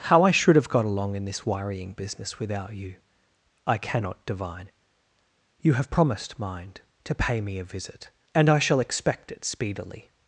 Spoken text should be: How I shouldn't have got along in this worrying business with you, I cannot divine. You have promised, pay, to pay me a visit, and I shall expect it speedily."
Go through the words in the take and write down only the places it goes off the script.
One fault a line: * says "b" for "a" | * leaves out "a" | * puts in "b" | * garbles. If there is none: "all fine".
* says "should" for "shouldn't"
* says "without" for "with"
* says "mind" for "pay"